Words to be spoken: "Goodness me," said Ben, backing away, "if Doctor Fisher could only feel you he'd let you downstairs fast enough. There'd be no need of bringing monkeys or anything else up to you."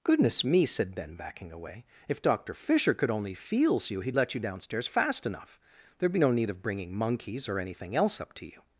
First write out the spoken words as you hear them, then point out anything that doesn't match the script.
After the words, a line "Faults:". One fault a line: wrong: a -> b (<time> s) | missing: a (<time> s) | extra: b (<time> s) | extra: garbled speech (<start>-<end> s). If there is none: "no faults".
"Goodness me," said Ben, backing away, "if Doctor Fisher could only feels you he'd let you downstairs fast enough. There'd be no need of bringing monkeys or anything else up to you."
Faults:
wrong: feel -> feels (3.3 s)